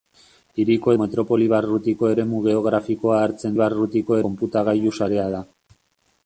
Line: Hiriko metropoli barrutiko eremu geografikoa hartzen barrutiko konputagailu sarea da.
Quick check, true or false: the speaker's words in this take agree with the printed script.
true